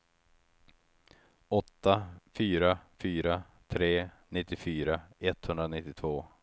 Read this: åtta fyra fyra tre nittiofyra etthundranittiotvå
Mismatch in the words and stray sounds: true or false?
false